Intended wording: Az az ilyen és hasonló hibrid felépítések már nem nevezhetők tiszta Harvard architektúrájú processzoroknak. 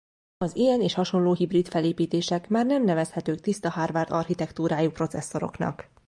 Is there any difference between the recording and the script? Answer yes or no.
yes